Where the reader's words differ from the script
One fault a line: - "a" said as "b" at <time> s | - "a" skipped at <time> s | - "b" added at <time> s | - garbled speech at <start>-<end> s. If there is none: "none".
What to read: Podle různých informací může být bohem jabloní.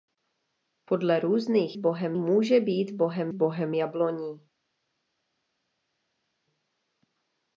- "informací" said as "bohem" at 1.8 s
- "bohem" added at 3.3 s